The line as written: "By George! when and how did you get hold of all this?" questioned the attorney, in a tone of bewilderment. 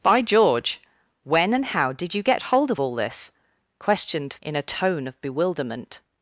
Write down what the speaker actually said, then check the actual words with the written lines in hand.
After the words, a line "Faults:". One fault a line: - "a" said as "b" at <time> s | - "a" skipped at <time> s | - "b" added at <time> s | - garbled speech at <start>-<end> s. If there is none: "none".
"By George! when and how did you get hold of all this?" questioned in a tone of bewilderment.
Faults:
- "the attorney" skipped at 4.4 s